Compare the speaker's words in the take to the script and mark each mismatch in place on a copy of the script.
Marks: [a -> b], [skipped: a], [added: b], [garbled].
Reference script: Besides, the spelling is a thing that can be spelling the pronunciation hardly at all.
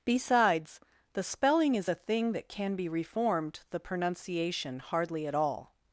Besides, the spelling is a thing that can be [spelling -> reformed] the pronunciation hardly at all.